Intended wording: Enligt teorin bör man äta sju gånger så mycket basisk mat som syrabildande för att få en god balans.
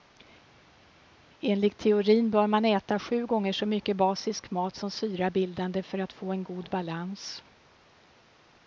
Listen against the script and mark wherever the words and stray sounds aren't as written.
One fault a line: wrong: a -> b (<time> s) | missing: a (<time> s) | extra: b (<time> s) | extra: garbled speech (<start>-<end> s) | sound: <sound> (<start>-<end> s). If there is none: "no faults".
no faults